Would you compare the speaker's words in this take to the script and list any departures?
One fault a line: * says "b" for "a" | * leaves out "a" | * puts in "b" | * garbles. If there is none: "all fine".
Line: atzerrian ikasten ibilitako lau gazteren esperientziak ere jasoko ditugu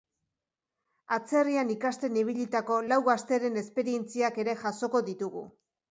all fine